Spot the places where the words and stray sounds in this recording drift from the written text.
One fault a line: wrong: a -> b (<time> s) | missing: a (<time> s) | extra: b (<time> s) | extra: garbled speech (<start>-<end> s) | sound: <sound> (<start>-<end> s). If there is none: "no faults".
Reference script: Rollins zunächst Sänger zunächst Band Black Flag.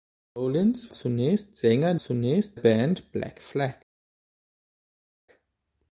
no faults